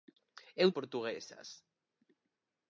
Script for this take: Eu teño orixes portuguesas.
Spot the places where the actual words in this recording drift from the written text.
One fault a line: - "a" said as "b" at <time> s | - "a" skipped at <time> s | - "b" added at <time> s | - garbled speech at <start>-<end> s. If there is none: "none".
- "teño orixes" skipped at 0.7 s